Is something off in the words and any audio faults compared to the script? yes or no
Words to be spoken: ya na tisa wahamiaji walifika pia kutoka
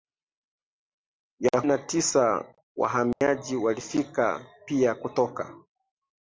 yes